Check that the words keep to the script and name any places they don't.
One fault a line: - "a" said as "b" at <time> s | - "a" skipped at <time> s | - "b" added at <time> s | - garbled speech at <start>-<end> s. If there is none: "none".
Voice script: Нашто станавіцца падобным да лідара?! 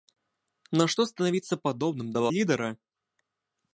none